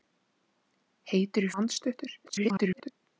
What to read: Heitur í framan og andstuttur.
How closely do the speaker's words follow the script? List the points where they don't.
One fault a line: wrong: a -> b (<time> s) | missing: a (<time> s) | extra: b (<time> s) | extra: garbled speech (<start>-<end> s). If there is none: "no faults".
missing: framan (1.5 s)
extra: garbled speech (2.2-2.9 s)